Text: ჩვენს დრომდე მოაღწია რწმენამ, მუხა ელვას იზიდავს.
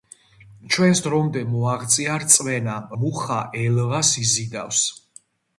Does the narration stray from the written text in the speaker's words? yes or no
no